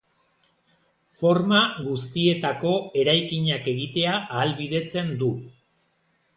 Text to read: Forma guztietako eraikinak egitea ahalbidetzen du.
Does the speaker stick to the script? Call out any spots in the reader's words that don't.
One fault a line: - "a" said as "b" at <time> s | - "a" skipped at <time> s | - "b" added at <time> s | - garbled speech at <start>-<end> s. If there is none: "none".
none